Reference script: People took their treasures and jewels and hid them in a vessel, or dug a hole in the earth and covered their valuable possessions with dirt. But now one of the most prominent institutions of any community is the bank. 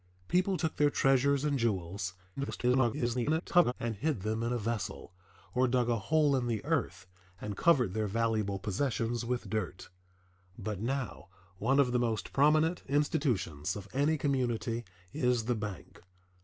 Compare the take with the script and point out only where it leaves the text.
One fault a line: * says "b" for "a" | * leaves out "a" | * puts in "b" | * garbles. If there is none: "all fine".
* garbles